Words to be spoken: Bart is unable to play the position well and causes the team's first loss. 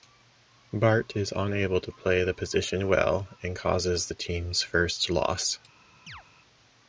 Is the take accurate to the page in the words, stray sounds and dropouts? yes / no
no